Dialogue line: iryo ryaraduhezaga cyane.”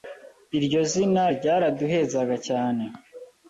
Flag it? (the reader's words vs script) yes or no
yes